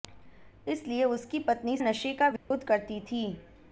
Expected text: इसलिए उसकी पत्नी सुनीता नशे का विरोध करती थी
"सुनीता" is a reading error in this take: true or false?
true